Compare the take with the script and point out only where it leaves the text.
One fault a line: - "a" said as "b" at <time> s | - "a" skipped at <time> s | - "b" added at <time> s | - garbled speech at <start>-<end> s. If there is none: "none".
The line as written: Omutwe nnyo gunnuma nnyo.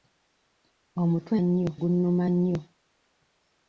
none